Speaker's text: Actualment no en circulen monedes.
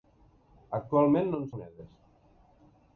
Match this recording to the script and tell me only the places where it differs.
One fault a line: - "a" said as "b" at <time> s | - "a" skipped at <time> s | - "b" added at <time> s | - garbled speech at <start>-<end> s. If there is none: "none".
- "circulen" skipped at 1.5 s